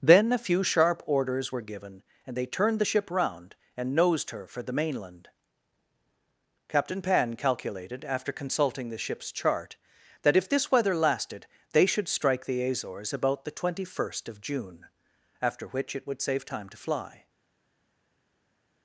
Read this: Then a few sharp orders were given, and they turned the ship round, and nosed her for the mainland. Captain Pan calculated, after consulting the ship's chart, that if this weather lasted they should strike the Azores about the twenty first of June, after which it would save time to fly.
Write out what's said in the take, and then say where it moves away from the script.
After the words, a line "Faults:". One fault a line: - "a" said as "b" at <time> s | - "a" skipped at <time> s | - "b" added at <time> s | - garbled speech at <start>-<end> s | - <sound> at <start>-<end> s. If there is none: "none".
Then a few sharp orders were given, and they turned the ship round, and nosed her for the mainland. Captain Pan calculated, after consulting the ship's chart, that if this weather lasted they should strike the Azores about the twenty first of June, after which it would save time to fly.
Faults:
none